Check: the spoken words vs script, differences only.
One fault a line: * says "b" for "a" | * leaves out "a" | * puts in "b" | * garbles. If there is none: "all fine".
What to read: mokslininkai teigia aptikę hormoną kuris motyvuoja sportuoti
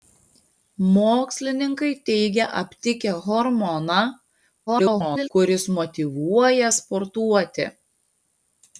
* garbles